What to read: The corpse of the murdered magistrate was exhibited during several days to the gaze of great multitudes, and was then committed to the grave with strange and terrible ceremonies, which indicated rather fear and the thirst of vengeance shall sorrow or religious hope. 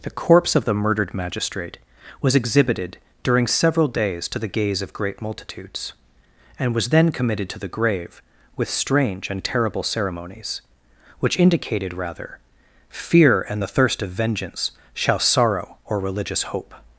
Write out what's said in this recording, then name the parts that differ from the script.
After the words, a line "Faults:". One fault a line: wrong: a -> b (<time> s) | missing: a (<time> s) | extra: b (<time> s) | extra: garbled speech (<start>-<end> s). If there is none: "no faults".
The corpse of the murdered magistrate was exhibited during several days to the gaze of great multitudes, and was then committed to the grave with strange and terrible ceremonies, which indicated rather fear and the thirst of vengeance shall sorrow or religious hope.
Faults:
no faults